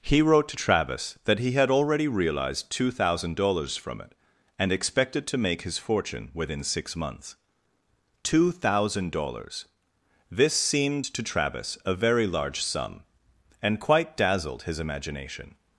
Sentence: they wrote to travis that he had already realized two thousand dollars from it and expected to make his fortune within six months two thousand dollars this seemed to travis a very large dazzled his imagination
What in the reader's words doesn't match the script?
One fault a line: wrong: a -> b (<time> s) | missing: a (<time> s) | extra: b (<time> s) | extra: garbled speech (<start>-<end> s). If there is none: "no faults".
wrong: they -> he (0.0 s)
extra: sum and quite (12.6 s)